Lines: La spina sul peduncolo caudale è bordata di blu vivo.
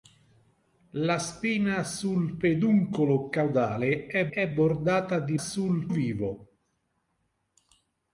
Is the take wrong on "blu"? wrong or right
wrong